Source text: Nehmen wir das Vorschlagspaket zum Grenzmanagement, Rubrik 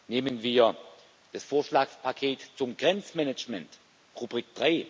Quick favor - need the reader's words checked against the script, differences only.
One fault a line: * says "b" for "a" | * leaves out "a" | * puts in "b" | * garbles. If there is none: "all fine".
all fine